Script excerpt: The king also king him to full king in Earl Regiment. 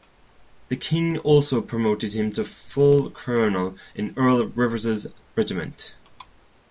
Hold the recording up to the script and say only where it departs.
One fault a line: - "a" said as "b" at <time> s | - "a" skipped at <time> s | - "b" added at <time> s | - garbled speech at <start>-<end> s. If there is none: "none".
- "king" said as "promoted" at 1.6 s
- "king" said as "colonel" at 3.1 s
- "Rivers's" added at 4.5 s